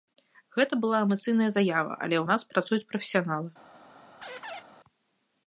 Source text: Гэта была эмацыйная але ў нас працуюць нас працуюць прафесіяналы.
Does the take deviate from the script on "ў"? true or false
false